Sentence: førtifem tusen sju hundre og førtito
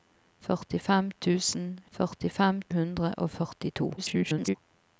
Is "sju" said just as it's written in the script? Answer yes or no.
no